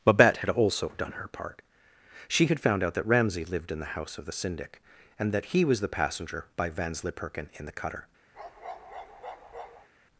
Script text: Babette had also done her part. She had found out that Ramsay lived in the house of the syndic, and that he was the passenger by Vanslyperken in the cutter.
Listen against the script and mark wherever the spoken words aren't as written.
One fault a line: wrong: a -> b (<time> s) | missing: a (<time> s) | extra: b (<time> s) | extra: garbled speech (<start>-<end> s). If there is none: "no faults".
no faults